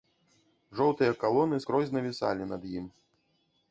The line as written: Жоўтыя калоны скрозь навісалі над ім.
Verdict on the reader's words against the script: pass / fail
pass